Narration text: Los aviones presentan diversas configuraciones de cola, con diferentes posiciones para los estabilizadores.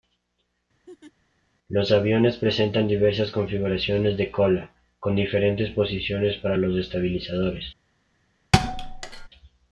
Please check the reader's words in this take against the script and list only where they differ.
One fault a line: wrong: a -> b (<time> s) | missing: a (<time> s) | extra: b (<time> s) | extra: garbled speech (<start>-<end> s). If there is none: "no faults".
no faults